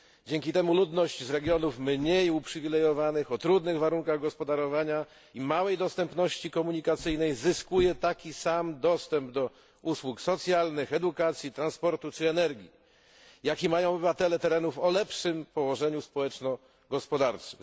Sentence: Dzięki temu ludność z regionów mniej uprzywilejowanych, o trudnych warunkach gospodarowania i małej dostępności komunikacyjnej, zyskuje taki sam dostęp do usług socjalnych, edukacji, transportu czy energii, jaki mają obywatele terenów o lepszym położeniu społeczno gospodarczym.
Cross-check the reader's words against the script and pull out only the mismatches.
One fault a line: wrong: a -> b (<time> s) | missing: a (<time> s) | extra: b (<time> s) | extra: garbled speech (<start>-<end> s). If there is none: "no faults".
no faults